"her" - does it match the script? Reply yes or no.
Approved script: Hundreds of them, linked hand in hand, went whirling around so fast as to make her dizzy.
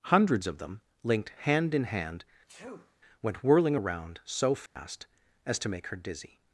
yes